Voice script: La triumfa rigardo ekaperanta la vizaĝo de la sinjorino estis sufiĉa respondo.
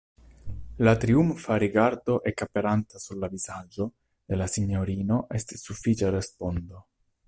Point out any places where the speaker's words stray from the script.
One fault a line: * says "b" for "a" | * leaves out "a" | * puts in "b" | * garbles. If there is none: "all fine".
* puts in "sur"